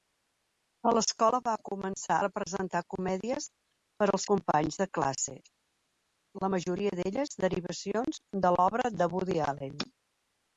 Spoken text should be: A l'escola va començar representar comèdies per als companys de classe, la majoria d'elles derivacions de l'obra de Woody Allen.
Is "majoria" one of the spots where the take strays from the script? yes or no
no